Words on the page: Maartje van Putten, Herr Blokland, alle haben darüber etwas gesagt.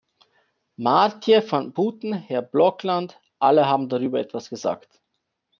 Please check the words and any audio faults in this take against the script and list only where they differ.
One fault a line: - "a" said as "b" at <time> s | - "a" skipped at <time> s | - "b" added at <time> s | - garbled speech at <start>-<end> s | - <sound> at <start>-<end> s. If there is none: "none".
none